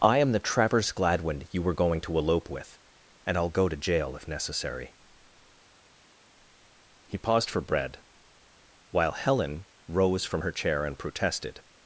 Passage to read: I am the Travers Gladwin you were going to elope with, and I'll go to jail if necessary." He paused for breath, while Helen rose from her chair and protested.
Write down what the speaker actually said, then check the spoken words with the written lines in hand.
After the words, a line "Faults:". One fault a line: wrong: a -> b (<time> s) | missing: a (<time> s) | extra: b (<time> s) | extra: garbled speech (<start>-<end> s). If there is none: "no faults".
I am the Travers Gladwin you were going to elope with, and I'll go to jail if necessary." He paused for bread, while Helen rose from her chair and protested.
Faults:
wrong: breath -> bread (7.6 s)